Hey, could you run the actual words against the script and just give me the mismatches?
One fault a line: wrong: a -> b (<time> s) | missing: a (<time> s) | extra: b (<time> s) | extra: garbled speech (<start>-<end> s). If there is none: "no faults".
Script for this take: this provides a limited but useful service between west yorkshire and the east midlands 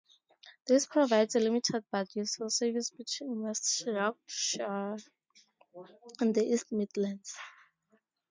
no faults